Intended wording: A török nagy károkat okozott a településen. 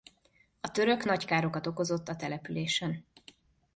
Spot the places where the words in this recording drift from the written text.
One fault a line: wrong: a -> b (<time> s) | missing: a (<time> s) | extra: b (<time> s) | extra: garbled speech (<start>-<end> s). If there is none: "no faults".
no faults